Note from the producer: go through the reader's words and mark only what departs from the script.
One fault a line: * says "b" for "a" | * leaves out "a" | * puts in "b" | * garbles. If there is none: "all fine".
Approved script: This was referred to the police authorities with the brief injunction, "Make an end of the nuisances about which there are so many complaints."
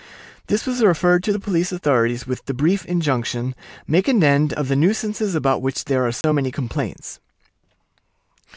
all fine